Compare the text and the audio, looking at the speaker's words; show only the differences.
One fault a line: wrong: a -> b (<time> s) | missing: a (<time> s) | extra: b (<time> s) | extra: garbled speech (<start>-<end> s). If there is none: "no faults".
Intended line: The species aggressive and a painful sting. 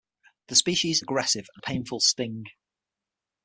no faults